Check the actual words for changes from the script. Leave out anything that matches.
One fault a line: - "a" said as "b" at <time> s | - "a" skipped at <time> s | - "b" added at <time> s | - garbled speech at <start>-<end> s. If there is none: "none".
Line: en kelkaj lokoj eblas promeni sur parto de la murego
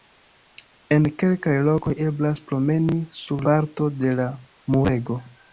none